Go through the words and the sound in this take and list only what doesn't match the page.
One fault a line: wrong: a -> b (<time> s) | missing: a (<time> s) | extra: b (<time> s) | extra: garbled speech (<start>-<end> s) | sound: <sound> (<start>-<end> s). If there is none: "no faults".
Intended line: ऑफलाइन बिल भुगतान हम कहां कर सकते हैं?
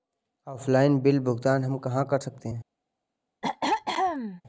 sound: throat clearing (3.4-4.4 s)